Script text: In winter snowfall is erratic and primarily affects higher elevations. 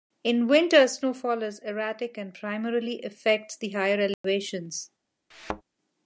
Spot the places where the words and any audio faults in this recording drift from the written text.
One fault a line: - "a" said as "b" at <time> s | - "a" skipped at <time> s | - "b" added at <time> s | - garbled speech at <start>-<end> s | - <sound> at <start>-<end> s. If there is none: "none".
- "the" added at 3.5 s
- dropout at 4.1-4.2 s
- thud at 5.3-5.6 s